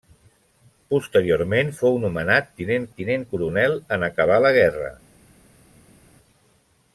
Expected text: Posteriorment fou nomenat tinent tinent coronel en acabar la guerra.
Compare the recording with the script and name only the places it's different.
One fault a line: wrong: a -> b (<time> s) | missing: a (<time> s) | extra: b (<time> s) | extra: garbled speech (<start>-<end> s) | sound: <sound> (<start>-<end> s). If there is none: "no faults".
no faults